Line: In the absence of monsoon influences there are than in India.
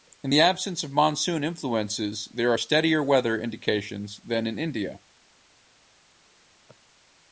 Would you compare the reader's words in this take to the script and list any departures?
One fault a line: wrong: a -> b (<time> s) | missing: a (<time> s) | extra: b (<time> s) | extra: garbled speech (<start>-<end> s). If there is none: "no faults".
extra: steadier weather indications (2.6 s)